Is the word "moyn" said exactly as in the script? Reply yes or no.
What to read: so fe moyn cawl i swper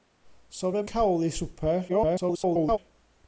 no